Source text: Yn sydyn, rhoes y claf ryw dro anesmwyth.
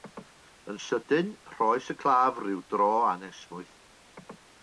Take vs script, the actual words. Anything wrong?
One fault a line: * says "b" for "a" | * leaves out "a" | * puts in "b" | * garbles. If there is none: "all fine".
all fine